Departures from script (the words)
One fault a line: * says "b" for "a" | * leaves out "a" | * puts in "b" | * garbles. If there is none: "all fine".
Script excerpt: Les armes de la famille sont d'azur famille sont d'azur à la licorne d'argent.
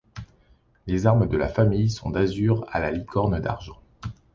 * leaves out "famille sont d'azur"